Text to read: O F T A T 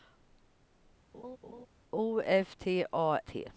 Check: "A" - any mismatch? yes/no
no